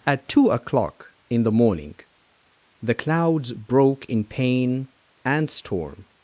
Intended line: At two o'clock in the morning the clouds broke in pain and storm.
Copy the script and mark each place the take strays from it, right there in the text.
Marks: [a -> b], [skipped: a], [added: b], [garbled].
At two o'clock in the morning the clouds broke in pain and storm.